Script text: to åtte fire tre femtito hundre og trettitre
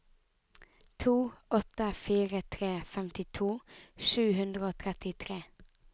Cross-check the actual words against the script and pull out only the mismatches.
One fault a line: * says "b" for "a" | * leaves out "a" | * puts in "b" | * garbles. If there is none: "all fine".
* puts in "sju"